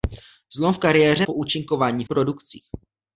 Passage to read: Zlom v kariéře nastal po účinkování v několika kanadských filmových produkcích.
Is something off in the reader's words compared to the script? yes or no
yes